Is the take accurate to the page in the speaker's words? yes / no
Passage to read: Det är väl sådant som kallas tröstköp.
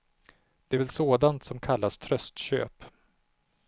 yes